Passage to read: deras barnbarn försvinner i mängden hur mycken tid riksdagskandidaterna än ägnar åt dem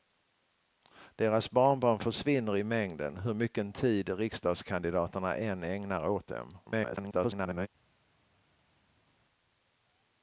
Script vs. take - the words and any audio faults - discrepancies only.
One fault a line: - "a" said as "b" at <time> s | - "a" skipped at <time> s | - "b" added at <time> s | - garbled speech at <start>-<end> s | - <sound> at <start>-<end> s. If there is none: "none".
- garbled speech at 6.7-7.7 s